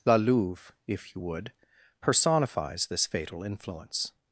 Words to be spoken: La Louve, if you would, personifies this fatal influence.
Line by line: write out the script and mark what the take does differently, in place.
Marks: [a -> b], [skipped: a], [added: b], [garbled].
La Louve, if you would, personifies this fatal influence.